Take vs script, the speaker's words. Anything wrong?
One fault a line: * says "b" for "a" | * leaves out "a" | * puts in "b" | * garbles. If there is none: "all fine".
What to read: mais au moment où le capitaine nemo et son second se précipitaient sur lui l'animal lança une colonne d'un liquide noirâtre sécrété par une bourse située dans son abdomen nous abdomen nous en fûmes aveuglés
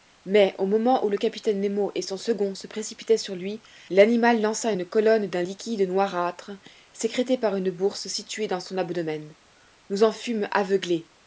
* leaves out "abdomen nous"